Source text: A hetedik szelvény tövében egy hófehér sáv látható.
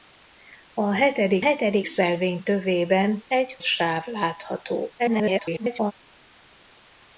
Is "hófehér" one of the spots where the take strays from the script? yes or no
yes